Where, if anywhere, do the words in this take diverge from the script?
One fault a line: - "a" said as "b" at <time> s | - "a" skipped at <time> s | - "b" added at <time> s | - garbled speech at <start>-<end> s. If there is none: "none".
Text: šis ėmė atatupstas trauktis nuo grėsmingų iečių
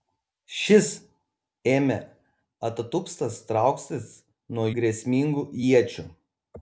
none